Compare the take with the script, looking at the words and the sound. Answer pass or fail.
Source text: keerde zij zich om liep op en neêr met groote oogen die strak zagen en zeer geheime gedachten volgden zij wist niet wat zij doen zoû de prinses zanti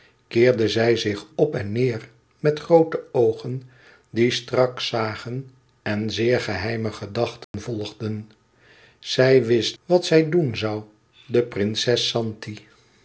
fail